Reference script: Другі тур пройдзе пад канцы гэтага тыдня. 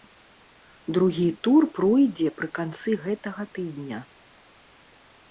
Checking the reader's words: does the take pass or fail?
fail